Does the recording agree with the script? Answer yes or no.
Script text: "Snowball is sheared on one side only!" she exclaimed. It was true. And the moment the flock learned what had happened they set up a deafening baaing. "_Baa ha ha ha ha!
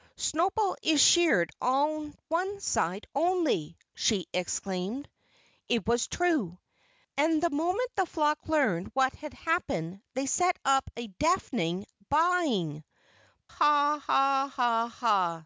no